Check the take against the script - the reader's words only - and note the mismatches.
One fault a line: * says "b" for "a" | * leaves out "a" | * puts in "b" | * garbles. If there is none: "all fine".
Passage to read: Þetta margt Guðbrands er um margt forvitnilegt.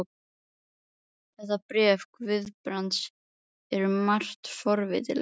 * says "bréf" for "margt"